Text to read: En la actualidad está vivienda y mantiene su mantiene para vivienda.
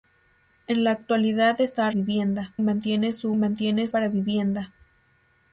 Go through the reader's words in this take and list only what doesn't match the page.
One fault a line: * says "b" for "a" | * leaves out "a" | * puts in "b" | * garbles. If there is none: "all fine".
all fine